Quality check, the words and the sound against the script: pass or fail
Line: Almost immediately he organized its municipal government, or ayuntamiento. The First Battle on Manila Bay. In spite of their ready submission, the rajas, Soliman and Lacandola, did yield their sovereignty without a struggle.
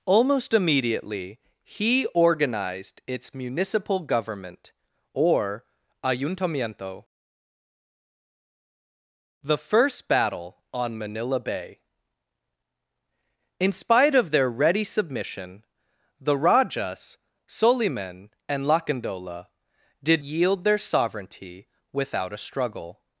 pass